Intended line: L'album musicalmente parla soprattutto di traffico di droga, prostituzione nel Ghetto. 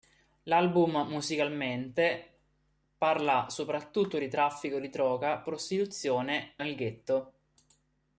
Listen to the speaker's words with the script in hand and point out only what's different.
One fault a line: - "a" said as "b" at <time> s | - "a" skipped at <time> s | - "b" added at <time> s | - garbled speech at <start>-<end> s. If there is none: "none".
none